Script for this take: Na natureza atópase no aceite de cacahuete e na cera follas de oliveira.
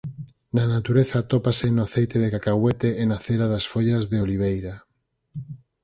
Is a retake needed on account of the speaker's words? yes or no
yes